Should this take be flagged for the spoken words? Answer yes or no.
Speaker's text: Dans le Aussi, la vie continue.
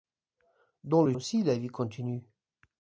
no